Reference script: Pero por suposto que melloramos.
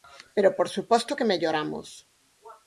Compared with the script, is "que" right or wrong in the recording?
right